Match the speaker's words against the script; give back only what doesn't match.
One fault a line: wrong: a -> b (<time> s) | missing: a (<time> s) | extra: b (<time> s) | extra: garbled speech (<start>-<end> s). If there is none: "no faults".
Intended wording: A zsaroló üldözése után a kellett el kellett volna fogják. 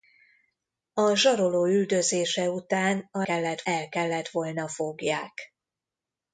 no faults